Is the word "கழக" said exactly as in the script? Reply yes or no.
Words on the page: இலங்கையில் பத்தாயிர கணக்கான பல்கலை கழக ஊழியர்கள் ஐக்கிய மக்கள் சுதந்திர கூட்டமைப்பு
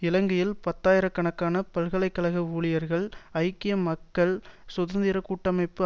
yes